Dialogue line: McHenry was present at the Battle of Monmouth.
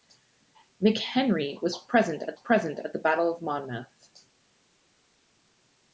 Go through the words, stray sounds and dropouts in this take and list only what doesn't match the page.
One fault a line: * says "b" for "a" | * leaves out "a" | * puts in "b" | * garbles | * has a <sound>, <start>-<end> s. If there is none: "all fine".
* puts in "present at"